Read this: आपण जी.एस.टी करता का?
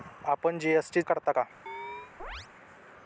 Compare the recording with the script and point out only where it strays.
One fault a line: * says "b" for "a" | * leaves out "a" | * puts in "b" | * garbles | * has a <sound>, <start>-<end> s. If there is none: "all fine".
* has a chirp, 1.7-2.5 s